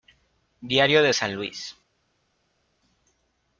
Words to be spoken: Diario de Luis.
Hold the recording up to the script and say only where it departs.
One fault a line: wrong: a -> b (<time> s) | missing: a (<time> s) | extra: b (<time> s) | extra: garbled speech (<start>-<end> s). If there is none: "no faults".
extra: San (1.1 s)